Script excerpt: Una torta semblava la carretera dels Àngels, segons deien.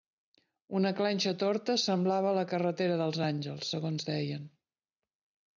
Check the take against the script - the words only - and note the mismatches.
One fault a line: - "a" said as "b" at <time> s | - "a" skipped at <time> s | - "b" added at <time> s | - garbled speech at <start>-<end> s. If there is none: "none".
- "clenxa" added at 1.0 s